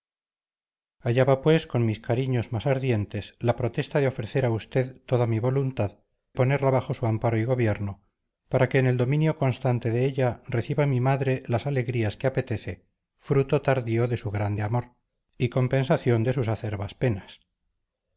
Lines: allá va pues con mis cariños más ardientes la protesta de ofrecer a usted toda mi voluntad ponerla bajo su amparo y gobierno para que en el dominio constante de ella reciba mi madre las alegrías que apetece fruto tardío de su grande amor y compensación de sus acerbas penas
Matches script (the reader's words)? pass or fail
pass